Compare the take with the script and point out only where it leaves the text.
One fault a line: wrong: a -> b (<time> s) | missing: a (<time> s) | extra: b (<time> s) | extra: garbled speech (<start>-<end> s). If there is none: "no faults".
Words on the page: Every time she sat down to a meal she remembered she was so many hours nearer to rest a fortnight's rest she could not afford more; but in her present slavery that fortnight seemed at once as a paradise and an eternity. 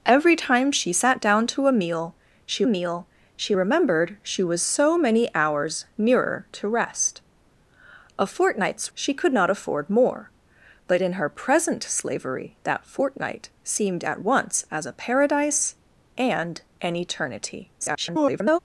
extra: meal she (2.6 s)
missing: rest (8.9 s)
extra: garbled speech (17.8-18.6 s)